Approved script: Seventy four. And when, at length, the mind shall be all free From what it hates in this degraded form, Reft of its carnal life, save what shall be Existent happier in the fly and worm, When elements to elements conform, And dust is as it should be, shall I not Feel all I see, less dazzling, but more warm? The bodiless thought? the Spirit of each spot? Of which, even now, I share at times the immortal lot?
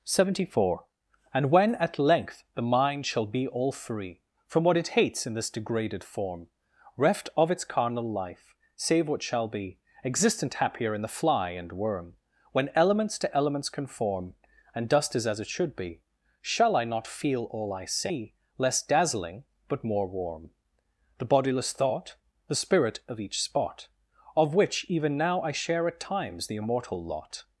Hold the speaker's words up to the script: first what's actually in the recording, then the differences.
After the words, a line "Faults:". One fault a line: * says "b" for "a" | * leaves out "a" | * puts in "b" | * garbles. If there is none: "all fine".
Seventy four. And when, at length, the mind shall be all free From what it hates in this degraded form, Reft of its carnal life, save what shall be Existent happier in the fly and worm, When elements to elements conform, And dust is as it should be, shall I not Feel all I see, less dazzling, but more warm? The bodiless thought? the Spirit of each spot? Of which, even now, I share at times the immortal lot?
Faults:
all fine